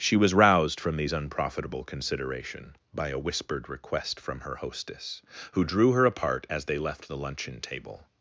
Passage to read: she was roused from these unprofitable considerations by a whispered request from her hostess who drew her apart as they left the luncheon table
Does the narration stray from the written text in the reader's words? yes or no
yes